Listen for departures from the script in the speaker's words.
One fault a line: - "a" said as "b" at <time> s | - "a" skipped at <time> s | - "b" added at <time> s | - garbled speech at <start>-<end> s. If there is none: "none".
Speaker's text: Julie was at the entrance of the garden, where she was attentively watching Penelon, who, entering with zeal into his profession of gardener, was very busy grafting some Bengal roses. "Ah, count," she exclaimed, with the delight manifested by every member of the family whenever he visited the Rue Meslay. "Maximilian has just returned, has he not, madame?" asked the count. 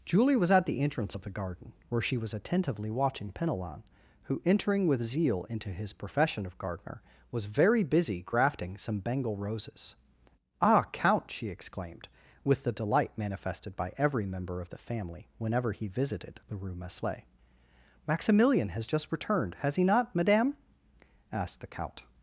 none